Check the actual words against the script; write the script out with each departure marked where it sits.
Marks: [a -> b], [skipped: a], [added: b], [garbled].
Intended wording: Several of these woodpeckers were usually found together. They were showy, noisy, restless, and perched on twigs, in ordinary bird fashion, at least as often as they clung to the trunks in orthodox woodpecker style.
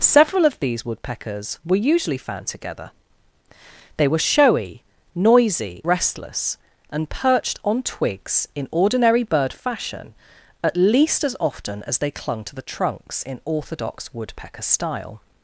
Several of these woodpeckers were usually found together. They were showy, noisy, restless, and perched on twigs, in ordinary bird fashion, at least as often as they clung to the trunks in orthodox woodpecker style.